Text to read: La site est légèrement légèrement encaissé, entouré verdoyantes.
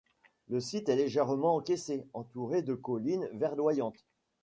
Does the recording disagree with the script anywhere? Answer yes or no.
yes